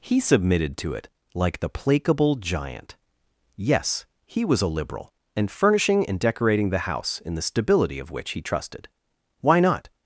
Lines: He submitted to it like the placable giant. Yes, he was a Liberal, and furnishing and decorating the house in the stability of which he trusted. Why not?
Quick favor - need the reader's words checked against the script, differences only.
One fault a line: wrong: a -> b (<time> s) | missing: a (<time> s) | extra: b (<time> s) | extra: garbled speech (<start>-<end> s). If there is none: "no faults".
no faults